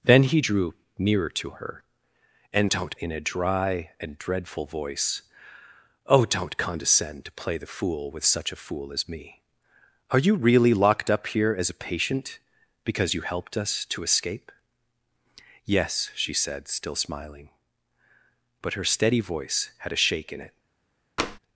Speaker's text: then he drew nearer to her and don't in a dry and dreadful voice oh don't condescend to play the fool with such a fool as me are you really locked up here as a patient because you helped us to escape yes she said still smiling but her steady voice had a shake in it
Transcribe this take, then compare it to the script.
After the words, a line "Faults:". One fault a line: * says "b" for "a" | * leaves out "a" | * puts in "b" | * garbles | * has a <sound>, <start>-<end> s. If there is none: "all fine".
then he drew nearer to her and don't in a dry and dreadful voice oh don't condescend to play the fool with such a fool as me are you really locked up here as a patient because you helped us to escape yes she said still smiling but her steady voice had a shake in it
Faults:
* has a tap, 21.2-21.4 s